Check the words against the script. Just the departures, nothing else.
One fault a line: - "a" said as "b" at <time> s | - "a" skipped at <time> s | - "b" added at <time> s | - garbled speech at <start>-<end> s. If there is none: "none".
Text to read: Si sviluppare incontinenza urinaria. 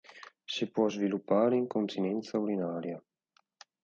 - "può" added at 0.7 s